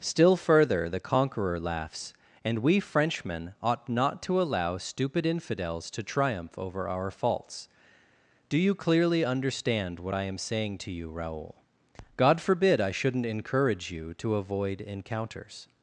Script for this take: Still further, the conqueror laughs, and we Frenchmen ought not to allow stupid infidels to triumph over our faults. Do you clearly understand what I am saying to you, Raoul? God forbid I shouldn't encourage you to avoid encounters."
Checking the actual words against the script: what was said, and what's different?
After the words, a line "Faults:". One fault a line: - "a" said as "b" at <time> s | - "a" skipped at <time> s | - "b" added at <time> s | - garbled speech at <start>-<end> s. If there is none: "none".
Still further, the conqueror laughs, and we Frenchmen ought not to allow stupid infidels to triumph over our faults. Do you clearly understand what I am saying to you, Raoul? God forbid I shouldn't encourage you to avoid encounters."
Faults:
none